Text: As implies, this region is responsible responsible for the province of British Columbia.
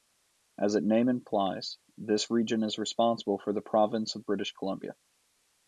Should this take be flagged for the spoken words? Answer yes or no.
yes